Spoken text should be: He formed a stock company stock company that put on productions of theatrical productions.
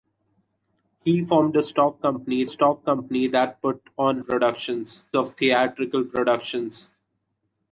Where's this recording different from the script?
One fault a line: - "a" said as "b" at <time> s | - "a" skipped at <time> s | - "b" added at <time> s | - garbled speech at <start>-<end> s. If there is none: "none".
none